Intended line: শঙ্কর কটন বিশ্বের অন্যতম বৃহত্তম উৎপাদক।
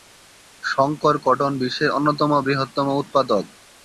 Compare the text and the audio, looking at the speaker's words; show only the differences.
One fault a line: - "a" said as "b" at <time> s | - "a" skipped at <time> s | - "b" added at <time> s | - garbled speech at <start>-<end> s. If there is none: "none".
none